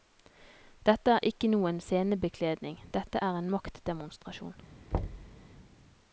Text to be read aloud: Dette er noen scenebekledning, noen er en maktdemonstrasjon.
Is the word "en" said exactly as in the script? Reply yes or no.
yes